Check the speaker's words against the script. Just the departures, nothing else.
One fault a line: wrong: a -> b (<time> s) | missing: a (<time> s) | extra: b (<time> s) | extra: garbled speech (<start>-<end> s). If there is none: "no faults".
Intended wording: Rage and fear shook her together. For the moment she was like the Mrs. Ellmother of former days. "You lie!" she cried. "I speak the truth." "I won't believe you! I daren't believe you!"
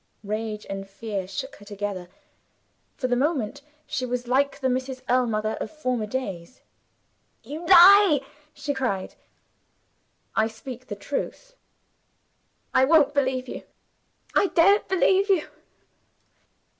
no faults